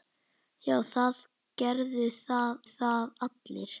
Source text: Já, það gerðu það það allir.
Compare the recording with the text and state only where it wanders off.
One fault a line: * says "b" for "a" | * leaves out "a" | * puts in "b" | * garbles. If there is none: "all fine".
all fine